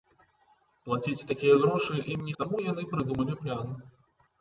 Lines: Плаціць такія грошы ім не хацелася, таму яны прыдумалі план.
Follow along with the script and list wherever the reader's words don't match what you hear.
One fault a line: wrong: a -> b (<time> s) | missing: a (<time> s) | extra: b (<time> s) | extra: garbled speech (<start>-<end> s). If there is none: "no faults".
missing: хацелася (2.3 s)